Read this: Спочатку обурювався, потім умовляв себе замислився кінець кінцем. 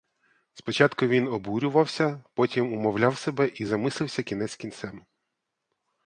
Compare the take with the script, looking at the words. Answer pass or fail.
fail